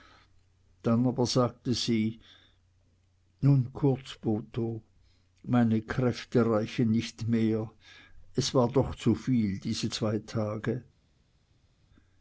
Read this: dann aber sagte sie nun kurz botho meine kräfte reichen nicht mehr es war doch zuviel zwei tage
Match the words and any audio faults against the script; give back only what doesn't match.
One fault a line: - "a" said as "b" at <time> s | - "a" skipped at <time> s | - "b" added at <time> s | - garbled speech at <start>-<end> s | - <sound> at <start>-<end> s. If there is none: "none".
- "diese" added at 9.6 s